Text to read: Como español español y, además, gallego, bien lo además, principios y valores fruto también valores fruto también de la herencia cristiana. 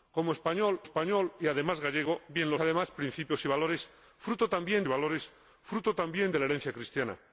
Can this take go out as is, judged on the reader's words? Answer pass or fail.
pass